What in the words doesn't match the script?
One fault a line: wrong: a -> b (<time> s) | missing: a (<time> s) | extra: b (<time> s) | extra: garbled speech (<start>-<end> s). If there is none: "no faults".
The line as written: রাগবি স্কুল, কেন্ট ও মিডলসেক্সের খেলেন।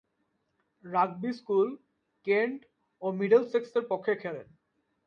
extra: পক্ষে (3.9 s)